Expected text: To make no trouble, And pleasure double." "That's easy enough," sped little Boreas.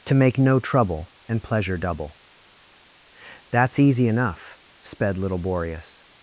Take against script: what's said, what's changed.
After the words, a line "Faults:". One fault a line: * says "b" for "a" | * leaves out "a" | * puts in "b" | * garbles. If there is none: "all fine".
To make no trouble, And pleasure double." "That's easy enough," sped little Boreas.
Faults:
all fine